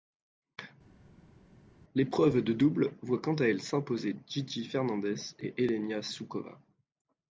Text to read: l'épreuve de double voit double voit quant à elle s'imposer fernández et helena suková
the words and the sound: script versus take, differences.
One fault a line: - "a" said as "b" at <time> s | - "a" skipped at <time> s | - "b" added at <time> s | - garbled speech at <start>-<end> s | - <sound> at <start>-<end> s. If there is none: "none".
- "double voit" skipped at 3.2 s
- "gigi" added at 4.3 s